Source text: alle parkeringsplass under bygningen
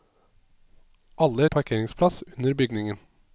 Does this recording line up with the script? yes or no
yes